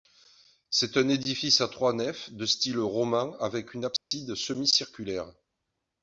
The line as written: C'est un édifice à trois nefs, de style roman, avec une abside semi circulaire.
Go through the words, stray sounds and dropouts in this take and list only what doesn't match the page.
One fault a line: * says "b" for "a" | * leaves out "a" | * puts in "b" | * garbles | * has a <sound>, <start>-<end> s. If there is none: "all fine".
* has a dropout, 4.0-4.1 s